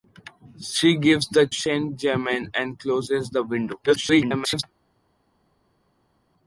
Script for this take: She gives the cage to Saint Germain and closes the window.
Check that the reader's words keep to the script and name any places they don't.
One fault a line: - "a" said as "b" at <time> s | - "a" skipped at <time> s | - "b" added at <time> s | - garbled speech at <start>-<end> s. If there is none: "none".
- "cage to" skipped at 1.5 s
- garbled speech at 3.9-4.6 s